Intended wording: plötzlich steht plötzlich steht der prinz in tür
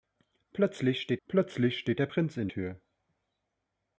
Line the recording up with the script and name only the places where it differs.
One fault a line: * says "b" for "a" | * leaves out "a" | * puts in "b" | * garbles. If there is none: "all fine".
all fine